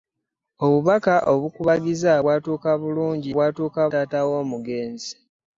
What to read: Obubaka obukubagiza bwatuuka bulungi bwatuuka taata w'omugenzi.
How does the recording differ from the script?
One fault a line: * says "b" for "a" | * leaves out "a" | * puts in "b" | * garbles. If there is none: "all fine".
all fine